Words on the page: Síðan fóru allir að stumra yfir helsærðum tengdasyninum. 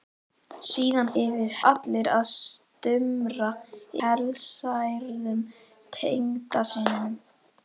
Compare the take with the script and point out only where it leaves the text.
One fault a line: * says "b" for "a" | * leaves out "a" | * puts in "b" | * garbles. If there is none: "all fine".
* says "yfir" for "fóru"
* leaves out "yfir"